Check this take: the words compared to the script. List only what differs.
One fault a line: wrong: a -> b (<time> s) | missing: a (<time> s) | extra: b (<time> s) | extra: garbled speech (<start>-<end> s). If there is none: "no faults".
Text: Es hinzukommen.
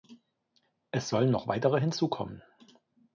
extra: sollen noch weitere (1.1 s)